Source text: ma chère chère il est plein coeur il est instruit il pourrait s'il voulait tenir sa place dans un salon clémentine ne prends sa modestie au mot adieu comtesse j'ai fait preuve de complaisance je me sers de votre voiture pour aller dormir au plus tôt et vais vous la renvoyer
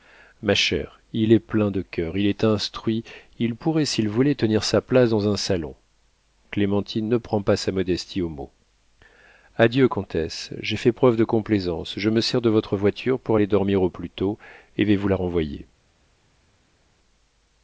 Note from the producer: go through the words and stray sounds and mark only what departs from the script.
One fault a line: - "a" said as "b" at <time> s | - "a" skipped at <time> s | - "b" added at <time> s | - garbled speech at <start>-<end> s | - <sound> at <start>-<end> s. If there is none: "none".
- "chère" skipped at 1.0 s
- "de" added at 1.7 s
- "pas" added at 7.4 s